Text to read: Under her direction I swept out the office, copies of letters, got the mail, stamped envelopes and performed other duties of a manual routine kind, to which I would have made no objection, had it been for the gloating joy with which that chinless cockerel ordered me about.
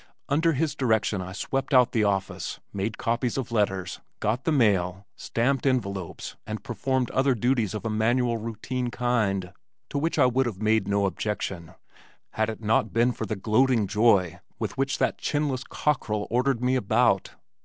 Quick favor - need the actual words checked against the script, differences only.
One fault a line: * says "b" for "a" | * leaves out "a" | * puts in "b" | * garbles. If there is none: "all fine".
* says "his" for "her"
* puts in "made"
* puts in "not"